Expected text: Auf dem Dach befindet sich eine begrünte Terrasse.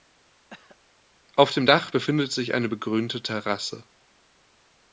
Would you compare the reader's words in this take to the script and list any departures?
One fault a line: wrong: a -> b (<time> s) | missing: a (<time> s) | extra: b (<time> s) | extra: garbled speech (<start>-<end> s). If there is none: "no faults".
no faults